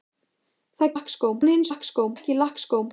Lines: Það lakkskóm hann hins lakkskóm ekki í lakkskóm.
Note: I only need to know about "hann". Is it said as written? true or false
true